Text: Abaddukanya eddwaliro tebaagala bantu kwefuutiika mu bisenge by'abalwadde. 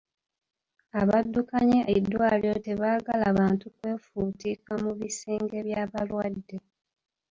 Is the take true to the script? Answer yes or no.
yes